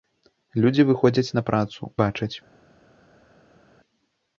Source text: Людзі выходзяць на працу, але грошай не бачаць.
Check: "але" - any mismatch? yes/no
yes